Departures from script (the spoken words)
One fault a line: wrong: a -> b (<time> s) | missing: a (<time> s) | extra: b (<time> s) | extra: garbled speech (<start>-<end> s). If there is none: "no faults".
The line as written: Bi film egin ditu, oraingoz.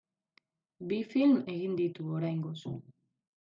no faults